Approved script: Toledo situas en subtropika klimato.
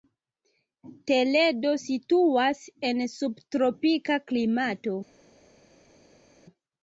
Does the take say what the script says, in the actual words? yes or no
yes